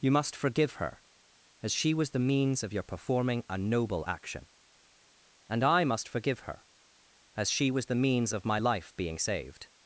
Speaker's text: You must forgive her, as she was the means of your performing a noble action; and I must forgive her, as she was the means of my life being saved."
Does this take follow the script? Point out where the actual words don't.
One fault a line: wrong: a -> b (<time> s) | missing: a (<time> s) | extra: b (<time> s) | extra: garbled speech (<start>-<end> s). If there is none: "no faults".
no faults